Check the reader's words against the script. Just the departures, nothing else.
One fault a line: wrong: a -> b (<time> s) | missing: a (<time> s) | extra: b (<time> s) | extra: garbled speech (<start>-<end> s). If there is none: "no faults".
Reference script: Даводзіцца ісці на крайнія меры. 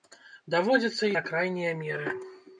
missing: ісці (1.1 s)